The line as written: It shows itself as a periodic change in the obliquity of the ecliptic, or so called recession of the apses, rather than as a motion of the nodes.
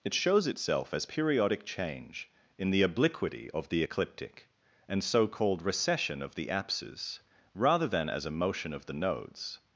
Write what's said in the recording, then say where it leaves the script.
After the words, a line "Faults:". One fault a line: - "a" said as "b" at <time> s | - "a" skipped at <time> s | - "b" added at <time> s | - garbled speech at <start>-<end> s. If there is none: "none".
It shows itself as periodic change in the obliquity of the ecliptic, and so called recession of the apses, rather than as a motion of the nodes.
Faults:
- "a" skipped at 1.1 s
- "or" said as "and" at 4.9 s